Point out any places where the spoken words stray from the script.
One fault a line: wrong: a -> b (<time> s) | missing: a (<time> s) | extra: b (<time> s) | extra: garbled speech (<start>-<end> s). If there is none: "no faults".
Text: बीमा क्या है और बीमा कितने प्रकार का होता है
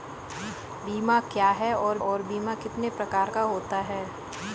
extra: और (2.0 s)